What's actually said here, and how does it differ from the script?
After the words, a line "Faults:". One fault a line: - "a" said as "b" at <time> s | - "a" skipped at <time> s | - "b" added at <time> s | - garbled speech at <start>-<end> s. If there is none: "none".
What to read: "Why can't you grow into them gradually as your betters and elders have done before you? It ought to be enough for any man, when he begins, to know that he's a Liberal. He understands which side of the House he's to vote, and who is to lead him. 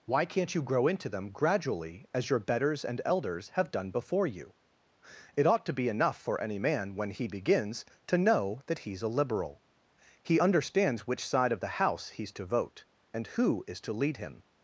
"Why can't you grow into them gradually as your betters and elders have done before you? It ought to be enough for any man, when he begins, to know that he's a Liberal. He understands which side of the House he's to vote, and who is to lead him.
Faults:
none